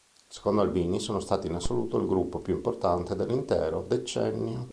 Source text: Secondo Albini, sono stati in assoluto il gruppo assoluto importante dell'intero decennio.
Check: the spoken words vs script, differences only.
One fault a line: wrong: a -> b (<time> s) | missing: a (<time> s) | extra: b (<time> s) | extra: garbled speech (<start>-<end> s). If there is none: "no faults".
wrong: assoluto -> più (2.4 s)